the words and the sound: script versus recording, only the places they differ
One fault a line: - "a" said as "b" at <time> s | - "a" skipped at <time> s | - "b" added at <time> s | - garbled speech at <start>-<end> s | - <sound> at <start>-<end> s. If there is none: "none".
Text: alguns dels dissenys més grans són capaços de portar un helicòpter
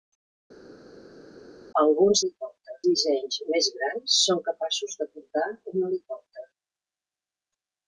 - "dels" said as "helicòpter" at 2.2 s